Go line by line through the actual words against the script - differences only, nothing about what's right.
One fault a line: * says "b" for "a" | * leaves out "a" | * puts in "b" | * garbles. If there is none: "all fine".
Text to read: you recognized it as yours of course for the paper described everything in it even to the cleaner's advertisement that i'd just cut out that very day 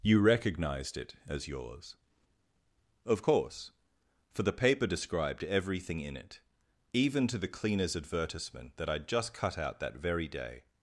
all fine